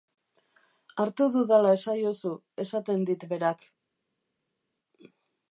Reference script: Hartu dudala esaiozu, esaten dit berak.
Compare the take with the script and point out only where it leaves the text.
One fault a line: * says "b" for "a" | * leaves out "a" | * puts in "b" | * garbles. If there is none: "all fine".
all fine